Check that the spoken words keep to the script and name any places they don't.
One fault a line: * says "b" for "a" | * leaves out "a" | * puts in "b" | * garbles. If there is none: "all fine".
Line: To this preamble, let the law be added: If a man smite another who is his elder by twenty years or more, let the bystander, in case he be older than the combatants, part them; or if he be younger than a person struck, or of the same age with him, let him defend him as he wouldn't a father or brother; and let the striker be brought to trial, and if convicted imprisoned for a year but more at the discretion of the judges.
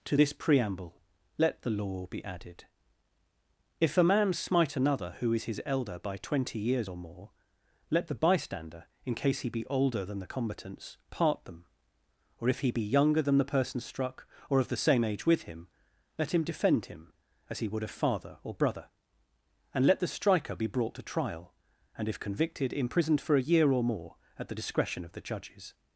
* says "the" for "a"
* says "would" for "wouldn't"
* says "or" for "but"